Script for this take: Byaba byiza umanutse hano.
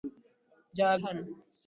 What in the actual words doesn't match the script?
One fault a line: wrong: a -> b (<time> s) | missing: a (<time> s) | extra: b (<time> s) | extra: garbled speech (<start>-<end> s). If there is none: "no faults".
missing: byiza umanutse (0.9 s)